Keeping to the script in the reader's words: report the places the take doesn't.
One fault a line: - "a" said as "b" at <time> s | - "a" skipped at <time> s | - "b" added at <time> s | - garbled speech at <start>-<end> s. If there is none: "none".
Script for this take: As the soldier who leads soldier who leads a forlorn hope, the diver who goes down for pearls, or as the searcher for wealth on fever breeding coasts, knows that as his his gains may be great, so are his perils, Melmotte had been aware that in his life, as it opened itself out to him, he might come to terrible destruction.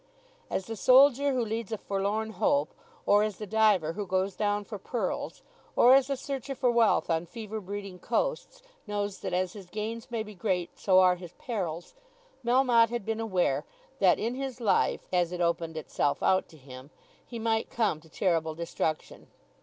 - "soldier who leads" skipped at 1.7 s
- "or as" added at 3.0 s
- "his" skipped at 9.7 s